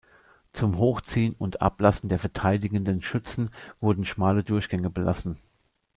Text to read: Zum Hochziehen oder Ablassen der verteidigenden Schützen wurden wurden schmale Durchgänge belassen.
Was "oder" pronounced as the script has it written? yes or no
no